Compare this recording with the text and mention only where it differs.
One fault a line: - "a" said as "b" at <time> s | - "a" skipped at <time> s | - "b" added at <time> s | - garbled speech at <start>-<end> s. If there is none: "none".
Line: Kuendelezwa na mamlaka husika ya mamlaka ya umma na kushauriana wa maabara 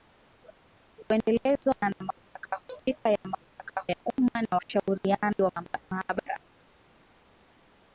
none